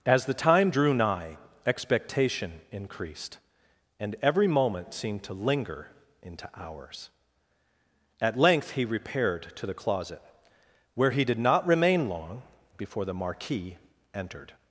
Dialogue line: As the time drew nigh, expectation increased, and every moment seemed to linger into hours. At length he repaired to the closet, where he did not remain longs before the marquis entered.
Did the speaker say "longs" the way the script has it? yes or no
no